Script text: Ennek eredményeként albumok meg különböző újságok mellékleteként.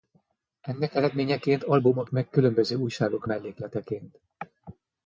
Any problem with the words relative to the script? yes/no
no